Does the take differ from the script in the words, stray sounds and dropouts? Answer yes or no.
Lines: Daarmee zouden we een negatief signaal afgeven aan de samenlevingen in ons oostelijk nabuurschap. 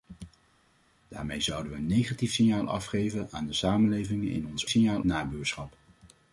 yes